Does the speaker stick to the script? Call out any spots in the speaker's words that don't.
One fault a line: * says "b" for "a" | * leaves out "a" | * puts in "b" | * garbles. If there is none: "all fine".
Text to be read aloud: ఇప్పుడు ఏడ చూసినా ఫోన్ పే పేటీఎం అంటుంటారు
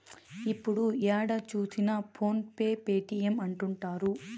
all fine